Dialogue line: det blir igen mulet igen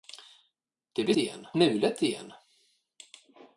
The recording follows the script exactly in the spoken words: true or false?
true